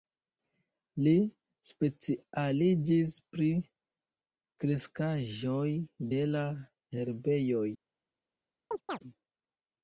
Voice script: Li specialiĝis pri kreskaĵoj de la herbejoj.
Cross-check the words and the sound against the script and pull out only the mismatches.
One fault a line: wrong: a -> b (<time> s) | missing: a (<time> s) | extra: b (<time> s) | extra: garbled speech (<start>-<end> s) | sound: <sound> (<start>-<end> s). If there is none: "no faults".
sound: chirp (8.7-9.0 s)